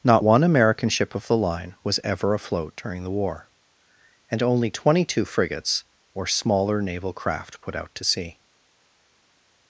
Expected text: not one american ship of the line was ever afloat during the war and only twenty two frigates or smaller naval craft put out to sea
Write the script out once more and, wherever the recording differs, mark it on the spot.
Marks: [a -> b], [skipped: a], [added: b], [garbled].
not one american ship of the line was ever afloat during the war and only twenty two frigates or smaller naval craft put out to sea